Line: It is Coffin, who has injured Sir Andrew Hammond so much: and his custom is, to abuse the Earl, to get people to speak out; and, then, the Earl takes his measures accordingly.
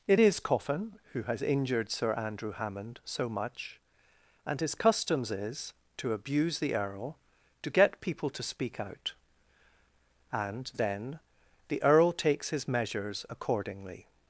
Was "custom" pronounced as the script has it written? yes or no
no